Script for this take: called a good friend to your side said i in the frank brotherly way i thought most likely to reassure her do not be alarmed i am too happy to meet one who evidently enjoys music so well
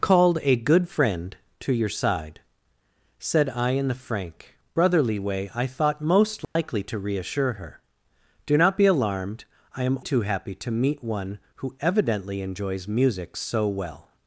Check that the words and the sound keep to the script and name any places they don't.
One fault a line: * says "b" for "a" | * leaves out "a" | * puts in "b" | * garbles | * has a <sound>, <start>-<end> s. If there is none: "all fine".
* has a dropout, 6.4-6.6 s